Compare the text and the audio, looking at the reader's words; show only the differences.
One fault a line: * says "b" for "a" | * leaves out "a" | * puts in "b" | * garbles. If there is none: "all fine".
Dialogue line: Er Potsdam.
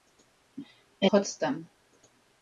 all fine